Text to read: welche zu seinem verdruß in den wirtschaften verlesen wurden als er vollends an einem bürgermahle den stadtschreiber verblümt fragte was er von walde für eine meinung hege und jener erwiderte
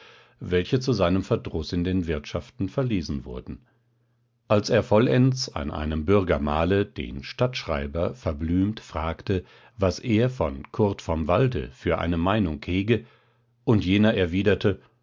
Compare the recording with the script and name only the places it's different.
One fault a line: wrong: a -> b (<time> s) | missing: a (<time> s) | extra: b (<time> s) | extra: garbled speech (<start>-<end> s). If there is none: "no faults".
extra: kurt vom (10.7 s)